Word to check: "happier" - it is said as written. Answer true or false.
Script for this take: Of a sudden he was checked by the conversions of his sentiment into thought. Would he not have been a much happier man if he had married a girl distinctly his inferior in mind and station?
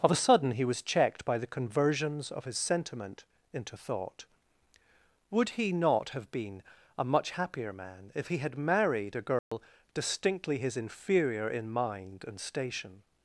true